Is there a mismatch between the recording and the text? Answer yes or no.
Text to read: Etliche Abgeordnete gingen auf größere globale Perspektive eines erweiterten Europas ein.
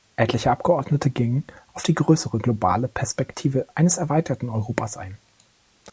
yes